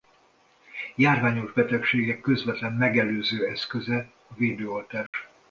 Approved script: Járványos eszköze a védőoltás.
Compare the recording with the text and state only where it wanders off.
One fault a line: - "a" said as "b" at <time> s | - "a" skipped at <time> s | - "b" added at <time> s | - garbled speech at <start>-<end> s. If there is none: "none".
- "betegségek közvetlen megelőző" added at 1.5 s